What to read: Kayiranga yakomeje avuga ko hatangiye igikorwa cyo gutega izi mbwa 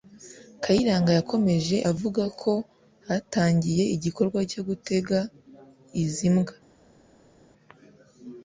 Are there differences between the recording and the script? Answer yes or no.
no